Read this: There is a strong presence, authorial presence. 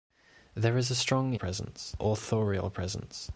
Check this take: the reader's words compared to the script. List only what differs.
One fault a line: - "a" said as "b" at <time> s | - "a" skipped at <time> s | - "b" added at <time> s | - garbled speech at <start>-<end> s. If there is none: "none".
none